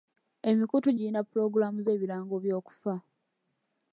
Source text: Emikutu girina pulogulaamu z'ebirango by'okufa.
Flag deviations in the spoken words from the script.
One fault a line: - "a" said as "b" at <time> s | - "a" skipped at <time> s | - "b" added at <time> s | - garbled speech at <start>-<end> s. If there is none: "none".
none